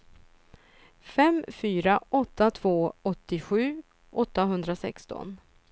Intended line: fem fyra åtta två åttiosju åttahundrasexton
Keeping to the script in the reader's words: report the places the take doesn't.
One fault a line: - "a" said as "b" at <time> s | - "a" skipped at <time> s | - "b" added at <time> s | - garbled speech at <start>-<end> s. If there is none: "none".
none